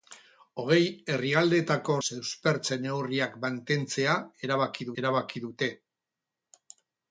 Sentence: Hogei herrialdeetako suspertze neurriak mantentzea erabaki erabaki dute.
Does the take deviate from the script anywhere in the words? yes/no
no